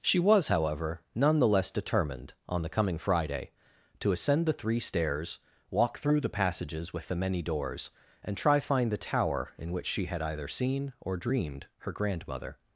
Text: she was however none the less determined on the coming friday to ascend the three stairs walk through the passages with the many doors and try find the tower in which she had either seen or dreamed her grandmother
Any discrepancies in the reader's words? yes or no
no